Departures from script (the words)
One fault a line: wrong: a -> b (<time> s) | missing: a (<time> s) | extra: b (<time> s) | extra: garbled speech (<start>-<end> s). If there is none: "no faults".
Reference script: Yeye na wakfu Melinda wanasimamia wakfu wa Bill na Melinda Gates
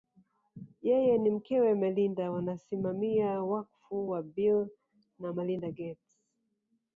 wrong: wakfu -> mkewe (1.3 s)